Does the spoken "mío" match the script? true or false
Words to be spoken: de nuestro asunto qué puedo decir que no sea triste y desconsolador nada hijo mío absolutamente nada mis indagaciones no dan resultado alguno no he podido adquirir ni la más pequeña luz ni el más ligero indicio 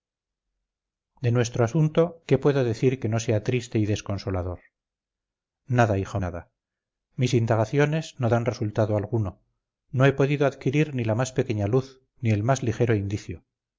false